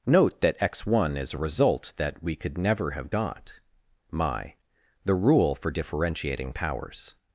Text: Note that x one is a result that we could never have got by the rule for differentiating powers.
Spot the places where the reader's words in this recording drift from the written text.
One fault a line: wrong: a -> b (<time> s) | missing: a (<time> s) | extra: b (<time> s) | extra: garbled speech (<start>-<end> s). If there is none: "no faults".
wrong: by -> my (4.1 s)